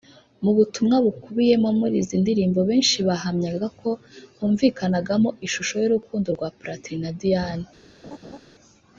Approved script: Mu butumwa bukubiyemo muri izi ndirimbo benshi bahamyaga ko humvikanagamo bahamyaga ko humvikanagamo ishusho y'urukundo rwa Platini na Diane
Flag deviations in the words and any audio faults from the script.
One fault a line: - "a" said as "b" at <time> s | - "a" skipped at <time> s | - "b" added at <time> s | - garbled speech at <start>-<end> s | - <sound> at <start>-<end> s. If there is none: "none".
- "bahamyaga ko humvikanagamo" skipped at 5.3 s
- laugh at 8.0-8.4 s